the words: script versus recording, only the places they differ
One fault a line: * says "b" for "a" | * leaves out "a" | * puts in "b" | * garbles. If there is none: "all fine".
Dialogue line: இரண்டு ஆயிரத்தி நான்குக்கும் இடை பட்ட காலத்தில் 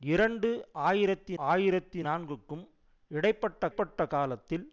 * puts in "ஆயிரத்தி"
* puts in "பட்ட"